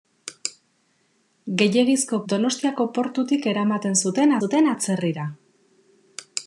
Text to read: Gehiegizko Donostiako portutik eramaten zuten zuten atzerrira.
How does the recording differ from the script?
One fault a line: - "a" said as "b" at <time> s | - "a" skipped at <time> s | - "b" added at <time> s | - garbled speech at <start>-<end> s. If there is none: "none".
none